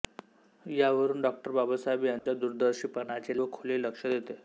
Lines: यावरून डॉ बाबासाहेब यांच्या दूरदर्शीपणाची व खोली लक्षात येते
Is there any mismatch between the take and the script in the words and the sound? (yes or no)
yes